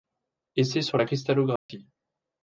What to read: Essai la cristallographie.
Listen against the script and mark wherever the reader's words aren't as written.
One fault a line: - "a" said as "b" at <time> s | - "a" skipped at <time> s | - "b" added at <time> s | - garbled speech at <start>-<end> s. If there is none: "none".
- "sur" added at 0.8 s